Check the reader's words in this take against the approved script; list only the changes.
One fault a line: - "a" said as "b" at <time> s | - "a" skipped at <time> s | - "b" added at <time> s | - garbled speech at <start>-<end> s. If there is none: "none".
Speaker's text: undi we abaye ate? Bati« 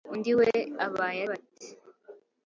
- "ate" skipped at 1.2 s